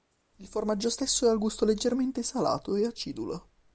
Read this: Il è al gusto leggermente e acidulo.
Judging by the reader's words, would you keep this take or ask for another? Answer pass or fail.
fail